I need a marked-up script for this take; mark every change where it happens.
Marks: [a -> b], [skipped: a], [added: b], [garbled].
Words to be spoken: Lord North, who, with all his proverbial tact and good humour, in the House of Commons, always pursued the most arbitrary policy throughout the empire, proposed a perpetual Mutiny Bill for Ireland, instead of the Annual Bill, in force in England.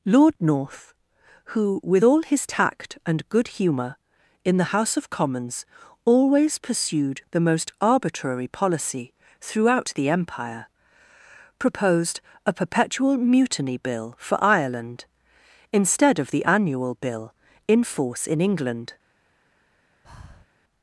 Lord North, who, with all his [skipped: proverbial] tact and good humour, in the House of Commons, always pursued the most arbitrary policy throughout the empire, proposed a perpetual Mutiny Bill for Ireland, instead of the Annual Bill, in force in England.